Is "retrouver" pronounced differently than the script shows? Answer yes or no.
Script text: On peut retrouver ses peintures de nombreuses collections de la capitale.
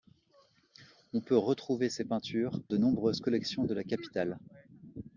no